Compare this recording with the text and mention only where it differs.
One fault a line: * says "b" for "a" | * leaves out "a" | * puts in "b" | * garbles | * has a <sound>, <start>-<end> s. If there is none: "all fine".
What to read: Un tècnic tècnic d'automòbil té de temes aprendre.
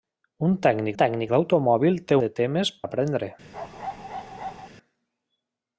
* has a bark, 3.5-4.7 s